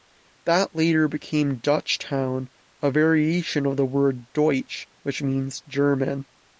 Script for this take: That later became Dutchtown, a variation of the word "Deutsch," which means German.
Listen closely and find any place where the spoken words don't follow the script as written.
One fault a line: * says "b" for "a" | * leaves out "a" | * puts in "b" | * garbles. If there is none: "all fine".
all fine